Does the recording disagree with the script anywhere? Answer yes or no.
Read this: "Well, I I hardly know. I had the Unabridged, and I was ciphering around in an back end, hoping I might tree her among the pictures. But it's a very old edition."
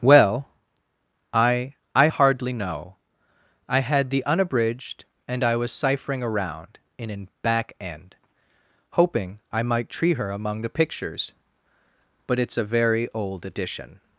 no